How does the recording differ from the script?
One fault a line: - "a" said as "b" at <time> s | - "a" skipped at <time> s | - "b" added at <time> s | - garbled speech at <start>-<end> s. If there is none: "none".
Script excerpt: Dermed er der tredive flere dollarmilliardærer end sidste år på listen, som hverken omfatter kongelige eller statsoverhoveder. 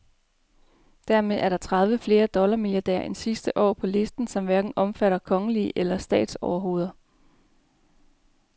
none